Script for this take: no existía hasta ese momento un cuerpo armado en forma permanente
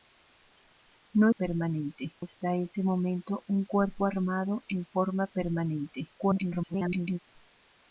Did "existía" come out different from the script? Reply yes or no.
yes